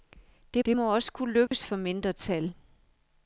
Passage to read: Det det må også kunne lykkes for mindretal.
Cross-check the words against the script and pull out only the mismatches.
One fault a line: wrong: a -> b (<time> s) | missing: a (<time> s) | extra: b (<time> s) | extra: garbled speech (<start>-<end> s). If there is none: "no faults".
no faults